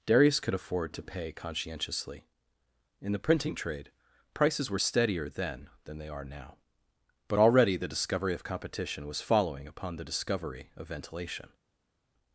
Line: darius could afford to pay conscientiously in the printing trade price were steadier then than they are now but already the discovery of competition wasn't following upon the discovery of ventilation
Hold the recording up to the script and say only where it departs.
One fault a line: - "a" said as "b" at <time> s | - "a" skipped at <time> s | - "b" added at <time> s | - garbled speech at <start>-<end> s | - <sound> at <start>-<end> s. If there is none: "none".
- "price" said as "prices" at 4.3 s
- "wasn't" said as "was" at 9.1 s